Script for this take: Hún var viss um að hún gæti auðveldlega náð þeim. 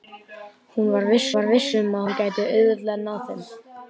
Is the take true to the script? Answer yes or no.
no